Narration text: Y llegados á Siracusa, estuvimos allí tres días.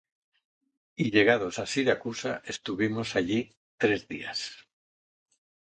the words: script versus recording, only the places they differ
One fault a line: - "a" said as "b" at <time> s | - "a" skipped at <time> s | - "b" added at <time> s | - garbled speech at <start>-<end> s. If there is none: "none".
none